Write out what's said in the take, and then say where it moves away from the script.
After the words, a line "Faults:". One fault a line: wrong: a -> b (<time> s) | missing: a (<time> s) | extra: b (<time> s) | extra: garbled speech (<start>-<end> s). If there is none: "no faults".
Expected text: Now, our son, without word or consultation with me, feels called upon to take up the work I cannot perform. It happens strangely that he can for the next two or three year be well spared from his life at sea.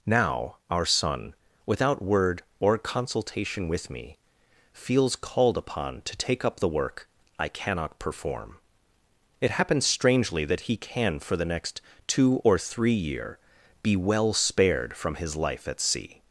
Now, our son, without word or consultation with me, feels called upon to take up the work I cannot perform. It happens strangely that he can for the next two or three year be well spared from his life at sea.
Faults:
no faults